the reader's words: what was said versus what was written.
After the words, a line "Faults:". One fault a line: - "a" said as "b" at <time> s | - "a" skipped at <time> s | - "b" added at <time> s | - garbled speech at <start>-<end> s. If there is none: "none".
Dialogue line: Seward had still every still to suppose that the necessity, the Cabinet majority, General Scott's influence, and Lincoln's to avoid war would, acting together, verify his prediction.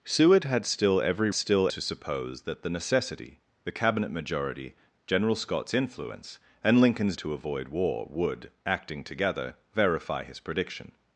Seward had still every still to suppose that the necessity, the Cabinet majority, General Scott's influence, and Lincoln's to avoid war would, acting together, verify his prediction.
Faults:
none